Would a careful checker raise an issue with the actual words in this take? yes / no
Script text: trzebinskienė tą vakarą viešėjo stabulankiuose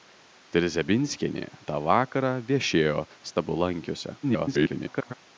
yes